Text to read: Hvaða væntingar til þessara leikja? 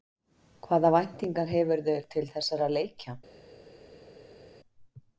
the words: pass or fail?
fail